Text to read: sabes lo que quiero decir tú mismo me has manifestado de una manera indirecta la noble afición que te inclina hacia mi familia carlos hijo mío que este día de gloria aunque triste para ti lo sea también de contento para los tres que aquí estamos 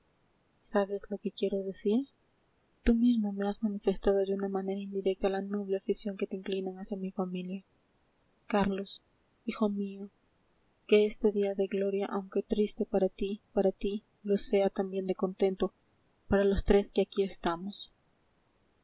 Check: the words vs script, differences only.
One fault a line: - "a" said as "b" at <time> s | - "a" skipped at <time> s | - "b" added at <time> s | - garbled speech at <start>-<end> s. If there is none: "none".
- "para ti" added at 13.5 s